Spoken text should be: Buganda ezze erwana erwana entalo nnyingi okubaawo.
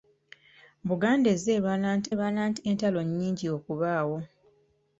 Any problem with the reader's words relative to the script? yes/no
no